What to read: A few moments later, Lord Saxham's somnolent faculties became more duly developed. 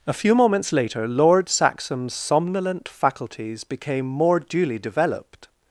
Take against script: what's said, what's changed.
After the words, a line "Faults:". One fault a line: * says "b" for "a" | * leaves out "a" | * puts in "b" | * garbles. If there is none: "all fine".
A few moments later, Lord Saxham's somnolent faculties became more duly developed.
Faults:
all fine